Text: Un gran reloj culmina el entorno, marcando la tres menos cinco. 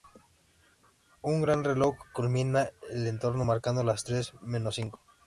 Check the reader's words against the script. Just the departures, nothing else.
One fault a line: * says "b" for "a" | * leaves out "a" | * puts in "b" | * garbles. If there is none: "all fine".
* says "las" for "la"